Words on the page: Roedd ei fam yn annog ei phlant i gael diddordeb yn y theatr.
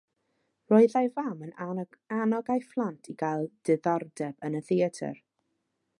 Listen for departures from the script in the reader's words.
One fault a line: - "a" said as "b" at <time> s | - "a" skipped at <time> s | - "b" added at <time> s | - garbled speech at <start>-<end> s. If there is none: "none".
none